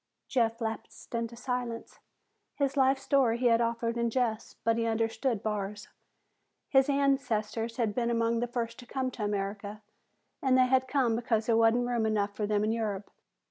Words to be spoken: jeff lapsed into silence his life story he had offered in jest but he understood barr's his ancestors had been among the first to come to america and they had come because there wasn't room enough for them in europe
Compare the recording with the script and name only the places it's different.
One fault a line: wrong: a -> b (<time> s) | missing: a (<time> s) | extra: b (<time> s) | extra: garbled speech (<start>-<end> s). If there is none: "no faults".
no faults